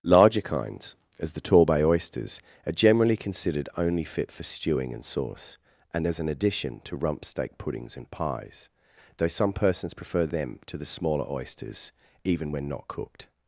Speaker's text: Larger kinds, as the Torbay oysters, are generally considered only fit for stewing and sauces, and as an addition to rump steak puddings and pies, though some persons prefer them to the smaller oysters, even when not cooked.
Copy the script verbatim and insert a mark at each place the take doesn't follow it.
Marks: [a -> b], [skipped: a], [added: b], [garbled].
Larger kinds, as the Torbay oysters, are generally considered only fit for stewing and [sauces, -> sauce] and as an addition to rump steak puddings and pies, though some persons prefer them to the smaller oysters, even when not cooked.